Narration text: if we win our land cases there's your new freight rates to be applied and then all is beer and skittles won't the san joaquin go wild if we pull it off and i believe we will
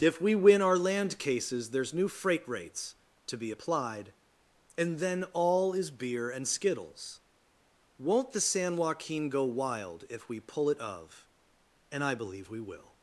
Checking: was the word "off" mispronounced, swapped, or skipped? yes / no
yes